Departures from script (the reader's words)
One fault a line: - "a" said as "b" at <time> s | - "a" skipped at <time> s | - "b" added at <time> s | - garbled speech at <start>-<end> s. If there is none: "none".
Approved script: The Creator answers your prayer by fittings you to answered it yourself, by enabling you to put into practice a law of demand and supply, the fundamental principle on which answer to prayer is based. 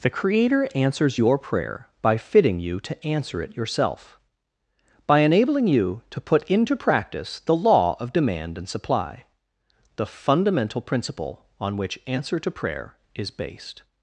- "fittings" said as "fitting" at 2.2 s
- "answered" said as "answer" at 3.0 s
- "a" said as "the" at 7.4 s